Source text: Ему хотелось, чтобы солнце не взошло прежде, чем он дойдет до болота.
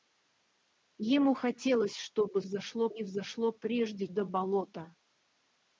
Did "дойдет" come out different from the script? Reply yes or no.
yes